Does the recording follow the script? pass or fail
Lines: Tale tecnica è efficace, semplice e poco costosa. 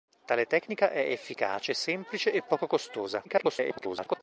fail